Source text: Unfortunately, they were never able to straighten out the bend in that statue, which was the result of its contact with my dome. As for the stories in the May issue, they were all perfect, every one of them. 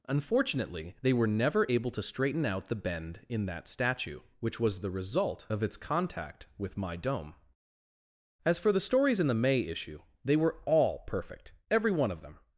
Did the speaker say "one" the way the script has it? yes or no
yes